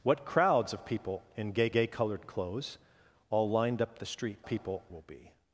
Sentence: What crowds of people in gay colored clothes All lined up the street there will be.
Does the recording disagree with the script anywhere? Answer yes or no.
yes